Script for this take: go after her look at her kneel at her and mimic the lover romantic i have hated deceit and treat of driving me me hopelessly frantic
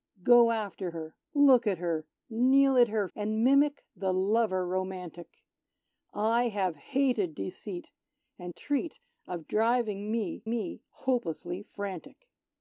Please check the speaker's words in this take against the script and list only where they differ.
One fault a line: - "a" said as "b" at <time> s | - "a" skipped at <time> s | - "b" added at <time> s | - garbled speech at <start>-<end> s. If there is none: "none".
none